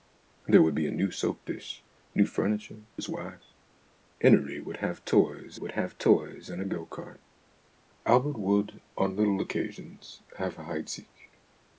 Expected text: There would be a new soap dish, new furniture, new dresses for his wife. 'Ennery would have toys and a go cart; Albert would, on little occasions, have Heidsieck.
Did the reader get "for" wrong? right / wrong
wrong